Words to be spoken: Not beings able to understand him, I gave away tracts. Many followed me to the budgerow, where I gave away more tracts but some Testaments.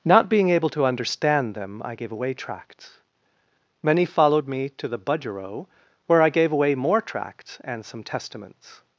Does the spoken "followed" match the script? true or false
true